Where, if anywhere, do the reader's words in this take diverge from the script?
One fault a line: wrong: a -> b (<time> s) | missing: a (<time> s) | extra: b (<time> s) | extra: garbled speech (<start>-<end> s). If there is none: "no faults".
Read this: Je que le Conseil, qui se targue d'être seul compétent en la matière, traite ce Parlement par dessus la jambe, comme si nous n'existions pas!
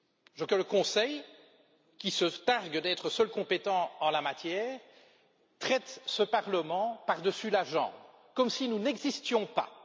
no faults